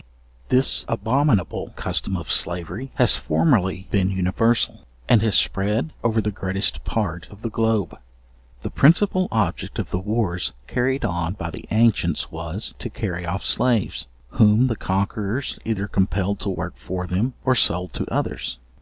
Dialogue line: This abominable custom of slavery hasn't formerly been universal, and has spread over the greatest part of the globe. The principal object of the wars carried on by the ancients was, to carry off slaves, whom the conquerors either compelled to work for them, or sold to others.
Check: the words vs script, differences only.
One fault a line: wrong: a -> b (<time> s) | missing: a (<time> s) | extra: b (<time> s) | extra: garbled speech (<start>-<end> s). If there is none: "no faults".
wrong: hasn't -> has (2.9 s)